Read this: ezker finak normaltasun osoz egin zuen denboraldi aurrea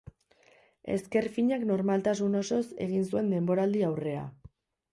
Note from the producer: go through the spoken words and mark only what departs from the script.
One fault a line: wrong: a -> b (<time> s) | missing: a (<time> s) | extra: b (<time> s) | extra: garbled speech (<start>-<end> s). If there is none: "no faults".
no faults